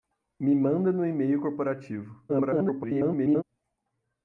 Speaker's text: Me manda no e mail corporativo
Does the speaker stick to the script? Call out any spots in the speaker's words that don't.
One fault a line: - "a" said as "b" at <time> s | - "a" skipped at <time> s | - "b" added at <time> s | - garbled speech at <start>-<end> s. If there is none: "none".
- garbled speech at 2.3-3.4 s